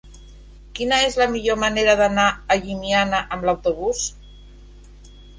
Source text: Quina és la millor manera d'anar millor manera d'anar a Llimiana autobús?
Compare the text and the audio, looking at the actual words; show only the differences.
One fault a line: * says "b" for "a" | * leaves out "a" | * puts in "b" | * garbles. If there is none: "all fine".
* leaves out "millor manera d'anar"
* puts in "amb"